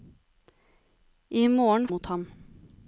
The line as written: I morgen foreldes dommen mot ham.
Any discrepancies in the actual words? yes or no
yes